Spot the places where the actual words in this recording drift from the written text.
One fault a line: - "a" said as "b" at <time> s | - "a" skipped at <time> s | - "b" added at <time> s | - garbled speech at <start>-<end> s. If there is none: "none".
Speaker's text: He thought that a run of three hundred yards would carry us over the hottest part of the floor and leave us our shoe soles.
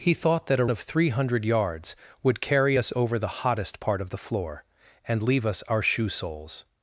- "run" skipped at 0.7 s